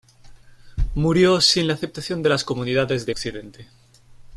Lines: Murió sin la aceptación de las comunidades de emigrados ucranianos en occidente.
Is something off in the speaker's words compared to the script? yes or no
yes